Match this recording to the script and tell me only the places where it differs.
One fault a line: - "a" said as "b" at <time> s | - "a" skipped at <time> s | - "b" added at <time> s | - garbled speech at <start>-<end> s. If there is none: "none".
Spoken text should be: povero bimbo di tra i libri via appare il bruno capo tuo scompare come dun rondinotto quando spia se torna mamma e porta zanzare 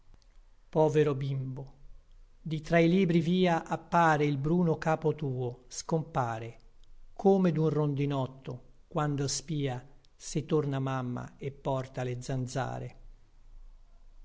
- "le" added at 12.0 s